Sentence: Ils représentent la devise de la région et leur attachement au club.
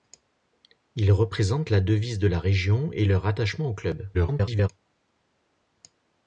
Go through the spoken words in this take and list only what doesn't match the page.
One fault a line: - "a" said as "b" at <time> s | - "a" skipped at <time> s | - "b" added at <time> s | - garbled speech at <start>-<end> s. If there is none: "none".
- garbled speech at 4.1-4.7 s